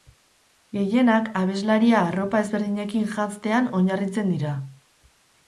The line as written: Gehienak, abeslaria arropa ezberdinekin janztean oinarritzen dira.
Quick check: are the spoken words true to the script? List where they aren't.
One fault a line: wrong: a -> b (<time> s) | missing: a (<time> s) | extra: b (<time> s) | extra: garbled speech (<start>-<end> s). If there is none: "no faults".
no faults